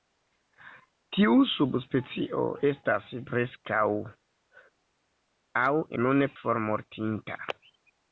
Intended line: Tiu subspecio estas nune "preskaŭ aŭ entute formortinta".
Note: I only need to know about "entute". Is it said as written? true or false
false